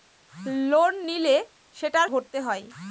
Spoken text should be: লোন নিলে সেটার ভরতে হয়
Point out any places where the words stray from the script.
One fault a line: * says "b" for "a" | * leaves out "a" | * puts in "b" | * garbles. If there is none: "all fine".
all fine